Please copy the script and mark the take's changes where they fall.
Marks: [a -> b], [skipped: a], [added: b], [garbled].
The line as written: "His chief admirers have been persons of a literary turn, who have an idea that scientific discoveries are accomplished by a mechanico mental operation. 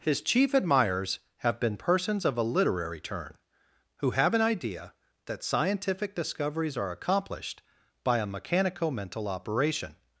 "His chief admirers have been persons of a literary turn, who have an idea that scientific discoveries are accomplished by a mechanico mental operation.